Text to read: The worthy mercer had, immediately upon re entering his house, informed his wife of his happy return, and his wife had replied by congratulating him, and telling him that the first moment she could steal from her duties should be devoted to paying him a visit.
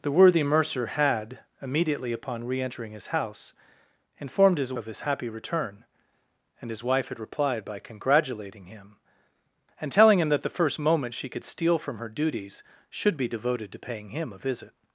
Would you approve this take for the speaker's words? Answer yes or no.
no